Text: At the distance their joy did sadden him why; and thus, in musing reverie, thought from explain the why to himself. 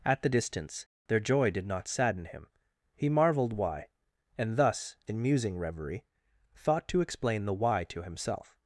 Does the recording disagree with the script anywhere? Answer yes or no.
yes